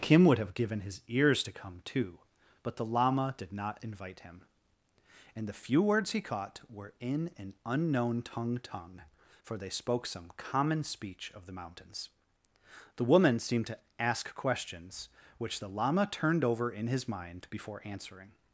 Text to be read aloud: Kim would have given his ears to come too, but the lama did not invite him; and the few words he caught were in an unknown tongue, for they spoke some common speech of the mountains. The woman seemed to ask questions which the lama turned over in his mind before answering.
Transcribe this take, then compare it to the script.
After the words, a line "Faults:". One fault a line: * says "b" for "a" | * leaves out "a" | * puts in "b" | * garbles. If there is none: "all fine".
Kim would have given his ears to come too, but the lama did not invite him; and the few words he caught were in an unknown tongue tongue, for they spoke some common speech of the mountains. The woman seemed to ask questions which the lama turned over in his mind before answering.
Faults:
* puts in "tongue"